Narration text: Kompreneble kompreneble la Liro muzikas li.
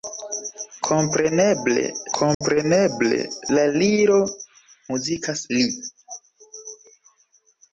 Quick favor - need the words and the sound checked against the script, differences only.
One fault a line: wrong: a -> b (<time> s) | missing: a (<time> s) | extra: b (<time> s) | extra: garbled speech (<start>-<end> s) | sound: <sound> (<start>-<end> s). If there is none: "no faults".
sound: dropout (2.3-2.4 s)